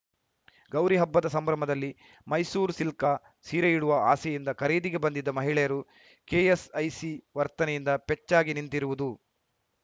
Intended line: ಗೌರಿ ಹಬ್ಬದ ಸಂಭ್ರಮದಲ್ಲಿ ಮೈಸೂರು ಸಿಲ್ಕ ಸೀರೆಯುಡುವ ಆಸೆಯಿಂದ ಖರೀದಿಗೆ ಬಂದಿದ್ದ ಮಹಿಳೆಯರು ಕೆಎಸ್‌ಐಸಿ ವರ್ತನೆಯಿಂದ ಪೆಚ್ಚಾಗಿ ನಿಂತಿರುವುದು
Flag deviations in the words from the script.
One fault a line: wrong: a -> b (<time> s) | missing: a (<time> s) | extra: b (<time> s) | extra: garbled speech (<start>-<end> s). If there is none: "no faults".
no faults